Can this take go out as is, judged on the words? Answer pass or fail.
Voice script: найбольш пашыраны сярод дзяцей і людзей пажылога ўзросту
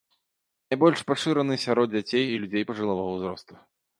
pass